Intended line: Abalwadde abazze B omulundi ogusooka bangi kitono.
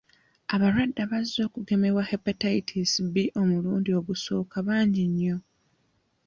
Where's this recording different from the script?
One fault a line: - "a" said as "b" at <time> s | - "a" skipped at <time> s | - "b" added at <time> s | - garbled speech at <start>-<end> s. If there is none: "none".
- "okugemebwa Hepatitis" added at 1.5 s
- "kitono" said as "nnyo" at 5.1 s